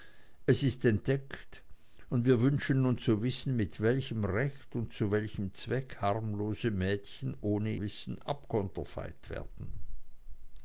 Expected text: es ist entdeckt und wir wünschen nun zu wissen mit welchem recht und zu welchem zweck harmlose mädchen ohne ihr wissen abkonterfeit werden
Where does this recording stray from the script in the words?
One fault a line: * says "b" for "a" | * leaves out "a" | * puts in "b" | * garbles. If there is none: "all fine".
* leaves out "ihr"